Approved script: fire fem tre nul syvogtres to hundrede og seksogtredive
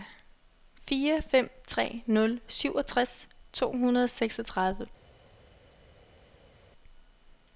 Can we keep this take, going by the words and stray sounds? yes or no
yes